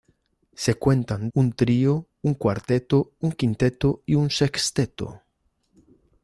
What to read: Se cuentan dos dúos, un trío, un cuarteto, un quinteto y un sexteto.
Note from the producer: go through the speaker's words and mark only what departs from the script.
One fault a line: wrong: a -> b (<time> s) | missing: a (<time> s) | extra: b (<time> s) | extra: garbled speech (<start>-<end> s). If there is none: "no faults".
missing: dos dúos (1.3 s)